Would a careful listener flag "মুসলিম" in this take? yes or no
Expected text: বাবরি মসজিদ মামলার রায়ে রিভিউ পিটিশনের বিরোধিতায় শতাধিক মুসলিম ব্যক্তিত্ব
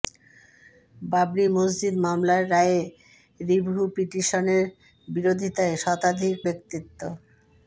yes